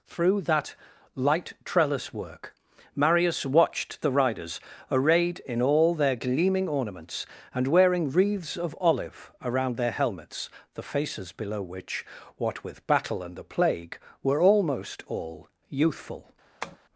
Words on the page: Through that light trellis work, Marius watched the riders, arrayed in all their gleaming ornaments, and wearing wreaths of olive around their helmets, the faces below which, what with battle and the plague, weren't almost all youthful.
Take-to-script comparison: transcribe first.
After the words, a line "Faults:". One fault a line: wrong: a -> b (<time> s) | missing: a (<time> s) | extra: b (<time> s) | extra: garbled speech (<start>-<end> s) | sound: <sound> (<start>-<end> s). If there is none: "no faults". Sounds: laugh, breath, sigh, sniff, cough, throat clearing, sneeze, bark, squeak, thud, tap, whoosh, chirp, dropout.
Through that light trellis work, Marius watched the riders, arrayed in all their gleaming ornaments, and wearing wreaths of olive around their helmets, the faces below which, what with battle and the plague, were almost all youthful.
Faults:
wrong: weren't -> were (14.2 s)
sound: tap (16.6-16.8 s)